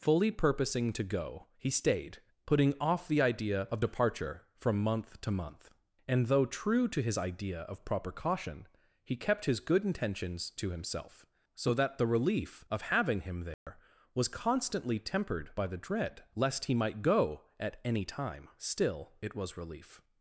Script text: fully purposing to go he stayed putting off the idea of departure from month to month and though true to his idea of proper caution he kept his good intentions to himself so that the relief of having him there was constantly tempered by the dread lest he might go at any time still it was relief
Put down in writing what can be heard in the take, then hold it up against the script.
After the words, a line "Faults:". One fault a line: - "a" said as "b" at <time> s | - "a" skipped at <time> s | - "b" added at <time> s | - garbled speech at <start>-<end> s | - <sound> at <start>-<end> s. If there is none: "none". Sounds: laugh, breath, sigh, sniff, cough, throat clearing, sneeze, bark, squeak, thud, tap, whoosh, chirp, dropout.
fully purposing to go he stayed putting off the idea of departure from month to month and though true to his idea of proper caution he kept his good intentions to himself so that the relief of having him there was constantly tempered by the dread lest he might go at any time still it was relief
Faults:
- dropout at 13.5-13.7 s